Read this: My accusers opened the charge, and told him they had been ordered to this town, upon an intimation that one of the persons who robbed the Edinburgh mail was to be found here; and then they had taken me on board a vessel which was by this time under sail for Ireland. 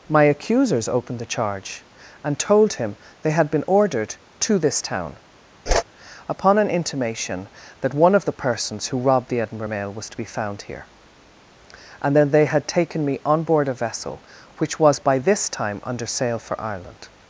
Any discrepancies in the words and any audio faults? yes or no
yes